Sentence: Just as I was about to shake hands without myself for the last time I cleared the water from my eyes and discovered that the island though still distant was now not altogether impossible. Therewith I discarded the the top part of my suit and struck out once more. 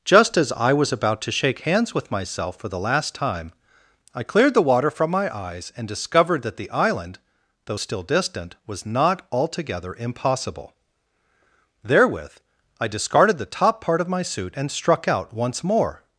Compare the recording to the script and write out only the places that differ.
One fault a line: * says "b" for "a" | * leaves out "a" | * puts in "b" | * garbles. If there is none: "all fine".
* says "with" for "without"
* leaves out "now"
* leaves out "the"